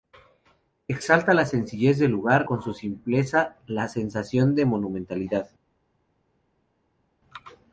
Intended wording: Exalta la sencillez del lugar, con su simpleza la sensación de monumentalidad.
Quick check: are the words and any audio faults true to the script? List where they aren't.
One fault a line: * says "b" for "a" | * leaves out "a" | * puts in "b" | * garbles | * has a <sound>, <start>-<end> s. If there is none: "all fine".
all fine